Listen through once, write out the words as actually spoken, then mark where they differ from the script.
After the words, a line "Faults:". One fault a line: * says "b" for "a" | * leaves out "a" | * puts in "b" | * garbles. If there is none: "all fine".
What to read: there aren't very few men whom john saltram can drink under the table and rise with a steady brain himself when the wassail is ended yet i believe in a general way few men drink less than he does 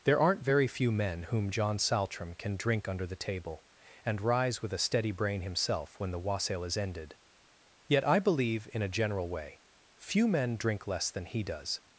there aren't very few men whom john saltram can drink under the table and rise with a steady brain himself when the wassail is ended yet i believe in a general way few men drink less than he does
Faults:
all fine